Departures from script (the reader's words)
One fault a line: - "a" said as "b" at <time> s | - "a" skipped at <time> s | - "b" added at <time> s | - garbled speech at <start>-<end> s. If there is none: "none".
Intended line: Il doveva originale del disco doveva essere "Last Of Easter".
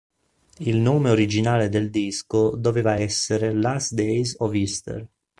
- "doveva" said as "nome" at 0.8 s
- "Days" added at 4.0 s